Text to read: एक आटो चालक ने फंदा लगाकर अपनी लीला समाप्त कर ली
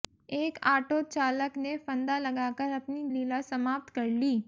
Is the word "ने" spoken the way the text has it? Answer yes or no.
yes